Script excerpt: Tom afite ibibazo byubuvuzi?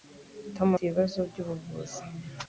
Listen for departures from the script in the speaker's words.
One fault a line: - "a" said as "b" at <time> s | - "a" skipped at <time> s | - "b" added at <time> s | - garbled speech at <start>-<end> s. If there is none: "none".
- "afite" skipped at 0.7 s